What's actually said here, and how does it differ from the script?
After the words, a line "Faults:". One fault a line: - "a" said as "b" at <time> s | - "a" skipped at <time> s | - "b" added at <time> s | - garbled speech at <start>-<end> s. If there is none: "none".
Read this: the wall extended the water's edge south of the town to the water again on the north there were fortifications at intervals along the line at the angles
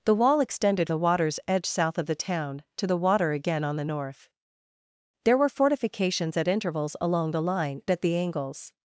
the wall extended the water's edge south of the town to the water again on the north there were fortifications at intervals along the line at the angles
Faults:
none